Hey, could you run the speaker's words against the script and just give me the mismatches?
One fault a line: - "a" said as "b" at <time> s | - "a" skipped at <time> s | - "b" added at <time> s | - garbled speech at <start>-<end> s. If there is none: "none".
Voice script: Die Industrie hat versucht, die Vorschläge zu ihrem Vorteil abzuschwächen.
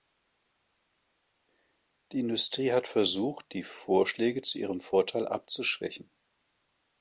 none